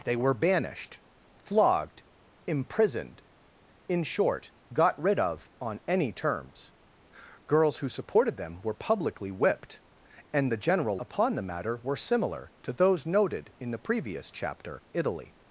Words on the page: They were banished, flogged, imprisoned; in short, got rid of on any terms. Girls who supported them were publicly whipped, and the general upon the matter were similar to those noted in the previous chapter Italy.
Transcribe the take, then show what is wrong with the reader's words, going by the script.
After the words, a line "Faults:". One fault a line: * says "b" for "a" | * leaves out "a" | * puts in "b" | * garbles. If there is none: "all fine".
They were banished, flogged, imprisoned; in short, got rid of on any terms. Girls who supported them were publicly whipped, and the general upon the matter were similar to those noted in the previous chapter Italy.
Faults:
all fine